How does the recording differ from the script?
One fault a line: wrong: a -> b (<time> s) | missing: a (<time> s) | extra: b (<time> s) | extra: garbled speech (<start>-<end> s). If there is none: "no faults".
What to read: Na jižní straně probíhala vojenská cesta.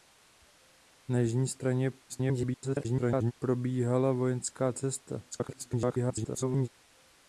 extra: garbled speech (2.1-3.3 s)
extra: garbled speech (5.3-6.7 s)